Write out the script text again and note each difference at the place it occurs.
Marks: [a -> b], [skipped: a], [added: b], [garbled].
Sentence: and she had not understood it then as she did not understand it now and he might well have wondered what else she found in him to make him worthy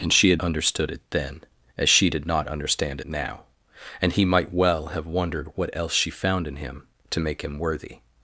and she had [skipped: not] understood it then as she did not understand [skipped: it] now and he might well have wondered what else she found in him to make him worthy